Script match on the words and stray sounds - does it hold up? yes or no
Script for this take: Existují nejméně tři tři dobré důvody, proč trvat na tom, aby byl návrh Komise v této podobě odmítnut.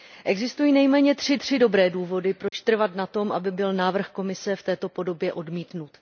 no